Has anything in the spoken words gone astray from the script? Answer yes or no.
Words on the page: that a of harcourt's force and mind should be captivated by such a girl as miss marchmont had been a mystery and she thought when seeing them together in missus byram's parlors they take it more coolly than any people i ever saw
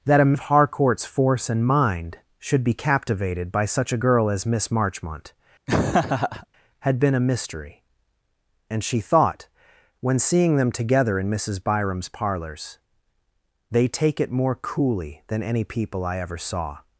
no